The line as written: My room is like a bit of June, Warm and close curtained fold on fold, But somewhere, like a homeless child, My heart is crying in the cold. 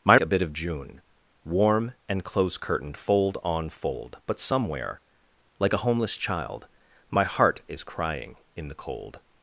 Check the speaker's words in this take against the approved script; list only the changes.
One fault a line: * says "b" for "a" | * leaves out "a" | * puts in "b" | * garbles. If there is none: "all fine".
* leaves out "room is like"